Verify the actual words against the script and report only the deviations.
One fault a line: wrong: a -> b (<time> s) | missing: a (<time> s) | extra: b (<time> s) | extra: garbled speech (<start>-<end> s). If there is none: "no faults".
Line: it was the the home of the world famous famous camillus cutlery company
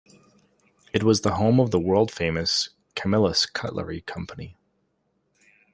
missing: the (1.4 s)
missing: famous (2.7 s)